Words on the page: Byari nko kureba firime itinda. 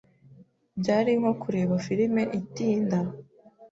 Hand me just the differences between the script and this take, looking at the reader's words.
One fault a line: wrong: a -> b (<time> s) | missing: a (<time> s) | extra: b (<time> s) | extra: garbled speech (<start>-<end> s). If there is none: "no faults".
no faults